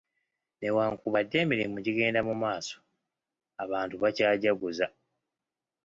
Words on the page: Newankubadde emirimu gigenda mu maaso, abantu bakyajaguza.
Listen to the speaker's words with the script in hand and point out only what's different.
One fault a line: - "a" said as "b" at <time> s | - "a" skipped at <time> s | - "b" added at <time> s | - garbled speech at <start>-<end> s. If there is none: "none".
none